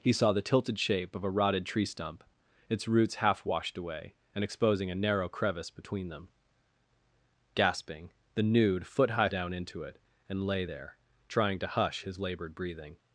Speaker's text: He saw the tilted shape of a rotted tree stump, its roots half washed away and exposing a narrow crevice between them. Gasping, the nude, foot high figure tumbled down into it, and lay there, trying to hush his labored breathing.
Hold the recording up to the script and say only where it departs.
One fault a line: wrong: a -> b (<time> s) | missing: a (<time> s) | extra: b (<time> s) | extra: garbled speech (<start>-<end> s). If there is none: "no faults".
missing: figure tumbled (9.3 s)